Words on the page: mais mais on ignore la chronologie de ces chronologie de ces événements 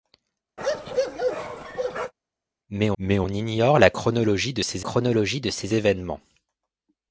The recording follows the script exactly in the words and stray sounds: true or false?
false